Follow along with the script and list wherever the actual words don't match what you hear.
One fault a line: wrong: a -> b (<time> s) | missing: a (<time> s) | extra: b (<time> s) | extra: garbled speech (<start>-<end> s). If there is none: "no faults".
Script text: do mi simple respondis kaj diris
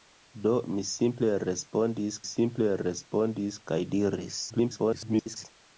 extra: simple respondis (2.3 s)
extra: garbled speech (4.5-5.5 s)